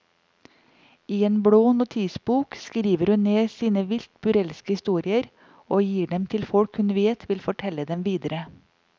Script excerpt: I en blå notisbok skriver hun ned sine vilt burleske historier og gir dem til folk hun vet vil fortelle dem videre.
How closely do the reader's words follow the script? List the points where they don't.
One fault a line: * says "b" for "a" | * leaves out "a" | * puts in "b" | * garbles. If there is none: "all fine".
all fine